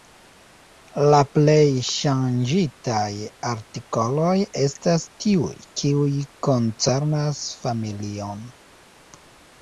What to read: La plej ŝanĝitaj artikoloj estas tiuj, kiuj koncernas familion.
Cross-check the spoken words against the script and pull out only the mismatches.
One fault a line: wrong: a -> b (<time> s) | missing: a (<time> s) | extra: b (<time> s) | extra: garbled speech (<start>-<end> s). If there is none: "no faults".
no faults